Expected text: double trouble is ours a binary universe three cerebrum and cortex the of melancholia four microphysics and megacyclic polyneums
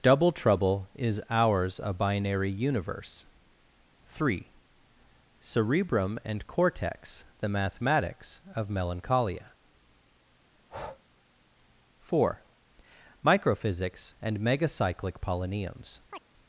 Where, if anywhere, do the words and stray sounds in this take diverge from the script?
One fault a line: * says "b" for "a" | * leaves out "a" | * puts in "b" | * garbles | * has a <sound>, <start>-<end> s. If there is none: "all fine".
* puts in "mathematics"
* has a breath, 10.5-11.0 s
* has a chirp, 16.1-16.2 s